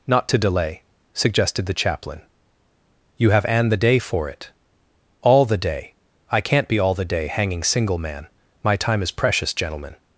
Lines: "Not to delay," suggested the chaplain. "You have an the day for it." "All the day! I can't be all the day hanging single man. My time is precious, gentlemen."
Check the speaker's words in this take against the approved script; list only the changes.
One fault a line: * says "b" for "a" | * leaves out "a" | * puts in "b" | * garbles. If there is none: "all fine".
all fine